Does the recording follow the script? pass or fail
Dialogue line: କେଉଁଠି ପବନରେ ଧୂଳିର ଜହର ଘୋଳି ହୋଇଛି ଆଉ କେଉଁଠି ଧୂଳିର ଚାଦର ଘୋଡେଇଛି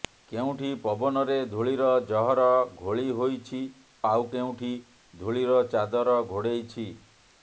pass